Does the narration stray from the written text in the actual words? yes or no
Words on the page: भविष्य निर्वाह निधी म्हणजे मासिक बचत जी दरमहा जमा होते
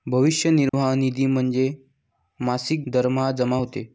yes